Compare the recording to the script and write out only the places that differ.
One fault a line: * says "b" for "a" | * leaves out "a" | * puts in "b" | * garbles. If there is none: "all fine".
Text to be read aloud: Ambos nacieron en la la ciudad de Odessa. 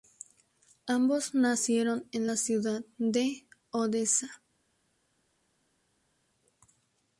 * leaves out "la"